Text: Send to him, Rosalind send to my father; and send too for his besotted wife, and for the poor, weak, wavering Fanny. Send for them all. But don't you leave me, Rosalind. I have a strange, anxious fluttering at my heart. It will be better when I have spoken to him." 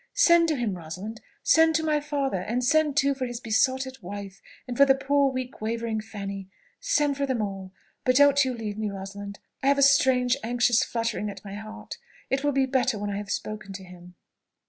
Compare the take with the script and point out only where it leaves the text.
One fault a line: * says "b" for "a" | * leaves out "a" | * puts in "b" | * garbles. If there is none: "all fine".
all fine